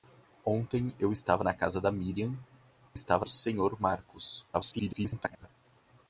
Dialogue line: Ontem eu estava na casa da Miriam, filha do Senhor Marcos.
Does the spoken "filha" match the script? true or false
false